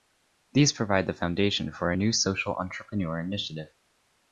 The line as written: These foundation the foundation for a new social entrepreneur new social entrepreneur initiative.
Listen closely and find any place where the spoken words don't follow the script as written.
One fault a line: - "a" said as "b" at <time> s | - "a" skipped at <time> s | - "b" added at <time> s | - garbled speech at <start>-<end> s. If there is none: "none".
- "foundation" said as "provide" at 0.7 s
- "new social entrepreneur" skipped at 3.2 s